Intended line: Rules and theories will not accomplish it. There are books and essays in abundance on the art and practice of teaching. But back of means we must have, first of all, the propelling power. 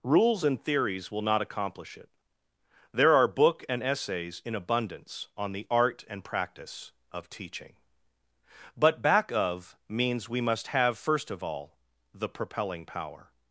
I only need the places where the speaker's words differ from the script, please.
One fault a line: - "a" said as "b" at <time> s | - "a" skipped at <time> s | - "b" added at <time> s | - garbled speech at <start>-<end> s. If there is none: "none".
- "books" said as "book" at 3.3 s